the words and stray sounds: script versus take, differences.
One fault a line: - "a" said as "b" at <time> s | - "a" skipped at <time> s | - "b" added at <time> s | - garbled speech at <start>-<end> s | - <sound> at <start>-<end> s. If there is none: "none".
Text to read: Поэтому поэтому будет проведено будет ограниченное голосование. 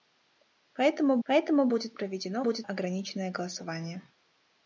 none